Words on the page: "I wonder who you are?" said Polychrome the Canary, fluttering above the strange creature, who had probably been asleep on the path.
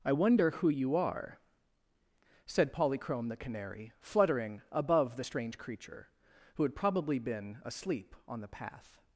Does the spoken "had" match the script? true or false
true